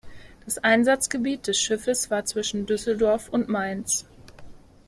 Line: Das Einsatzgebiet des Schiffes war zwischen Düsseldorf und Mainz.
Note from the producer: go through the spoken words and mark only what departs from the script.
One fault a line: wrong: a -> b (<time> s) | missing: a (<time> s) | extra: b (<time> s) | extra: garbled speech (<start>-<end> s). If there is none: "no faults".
no faults